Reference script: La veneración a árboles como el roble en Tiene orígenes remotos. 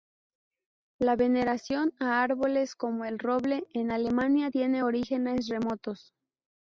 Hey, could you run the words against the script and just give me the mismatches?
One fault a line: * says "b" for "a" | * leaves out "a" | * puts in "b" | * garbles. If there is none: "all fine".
* puts in "Alemania"